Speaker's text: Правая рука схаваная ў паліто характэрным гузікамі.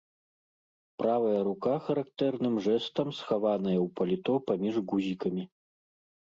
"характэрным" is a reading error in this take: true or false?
true